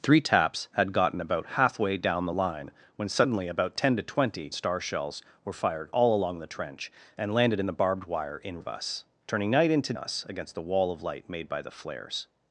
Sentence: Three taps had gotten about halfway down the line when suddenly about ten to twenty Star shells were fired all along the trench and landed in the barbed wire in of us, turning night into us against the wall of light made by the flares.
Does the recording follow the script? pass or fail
pass